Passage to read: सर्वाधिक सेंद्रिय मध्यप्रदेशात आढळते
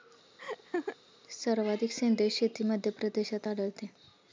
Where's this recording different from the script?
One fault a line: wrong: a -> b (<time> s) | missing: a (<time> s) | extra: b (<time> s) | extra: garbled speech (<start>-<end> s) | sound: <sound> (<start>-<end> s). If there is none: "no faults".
sound: laugh (0.4-1.0 s)
extra: शेती (2.3 s)